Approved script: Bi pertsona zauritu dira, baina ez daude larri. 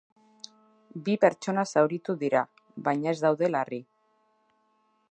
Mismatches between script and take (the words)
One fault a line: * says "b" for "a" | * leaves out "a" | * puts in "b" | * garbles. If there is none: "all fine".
all fine